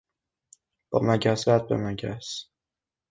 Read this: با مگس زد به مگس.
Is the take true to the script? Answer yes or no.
yes